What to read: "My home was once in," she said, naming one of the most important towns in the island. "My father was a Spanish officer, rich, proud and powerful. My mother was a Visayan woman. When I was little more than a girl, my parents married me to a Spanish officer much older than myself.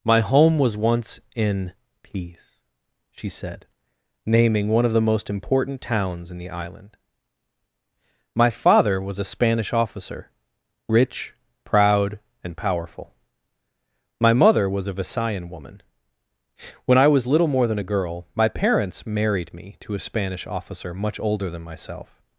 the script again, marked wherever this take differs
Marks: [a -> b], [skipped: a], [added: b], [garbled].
"My home was once in," [added: peace] she said, naming one of the most important towns in the island. "My father was a Spanish officer, rich, proud and powerful. My mother was a Visayan woman. When I was little more than a girl, my parents married me to a Spanish officer much older than myself.